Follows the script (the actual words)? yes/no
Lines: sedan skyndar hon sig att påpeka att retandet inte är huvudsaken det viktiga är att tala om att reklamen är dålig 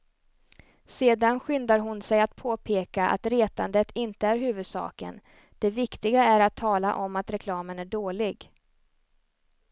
yes